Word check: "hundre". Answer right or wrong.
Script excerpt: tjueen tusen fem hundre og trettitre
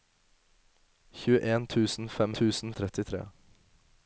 wrong